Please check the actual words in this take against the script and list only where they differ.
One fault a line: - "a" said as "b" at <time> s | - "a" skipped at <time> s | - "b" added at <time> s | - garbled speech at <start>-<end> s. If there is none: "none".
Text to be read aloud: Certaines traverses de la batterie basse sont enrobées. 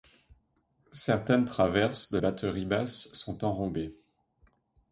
- "la" skipped at 2.2 s